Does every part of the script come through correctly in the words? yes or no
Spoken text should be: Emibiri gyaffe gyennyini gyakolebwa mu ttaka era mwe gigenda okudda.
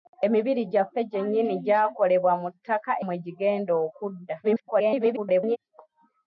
no